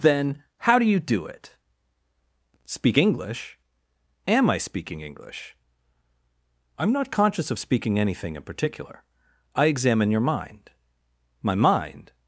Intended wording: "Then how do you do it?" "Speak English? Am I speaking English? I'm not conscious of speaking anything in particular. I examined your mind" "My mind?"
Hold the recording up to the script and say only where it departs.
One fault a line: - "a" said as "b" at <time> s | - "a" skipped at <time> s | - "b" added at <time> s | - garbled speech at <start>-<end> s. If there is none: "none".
- "examined" said as "examine" at 9.7 s